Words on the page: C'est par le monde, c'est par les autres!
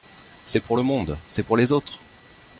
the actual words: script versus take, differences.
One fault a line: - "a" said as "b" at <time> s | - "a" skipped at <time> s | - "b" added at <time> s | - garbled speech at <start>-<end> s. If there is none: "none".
- "par" said as "pour" at 0.6 s
- "par" said as "pour" at 1.4 s